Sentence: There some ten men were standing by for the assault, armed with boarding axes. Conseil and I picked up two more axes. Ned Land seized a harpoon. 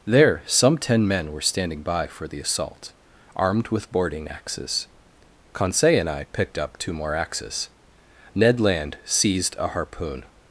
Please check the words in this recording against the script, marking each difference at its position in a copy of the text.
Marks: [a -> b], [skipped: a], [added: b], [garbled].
There some ten men were standing by for the assault, armed with boarding axes. Conseil and I picked up two more axes. Ned Land seized a harpoon.